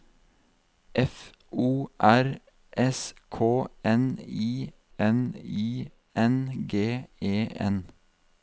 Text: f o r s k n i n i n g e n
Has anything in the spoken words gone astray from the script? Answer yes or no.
no